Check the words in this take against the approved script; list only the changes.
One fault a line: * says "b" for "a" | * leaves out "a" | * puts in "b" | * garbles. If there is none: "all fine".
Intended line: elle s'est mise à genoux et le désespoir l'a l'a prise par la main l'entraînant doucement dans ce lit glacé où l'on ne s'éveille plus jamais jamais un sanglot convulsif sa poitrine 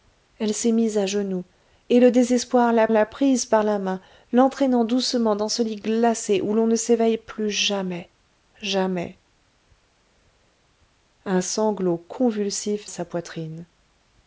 all fine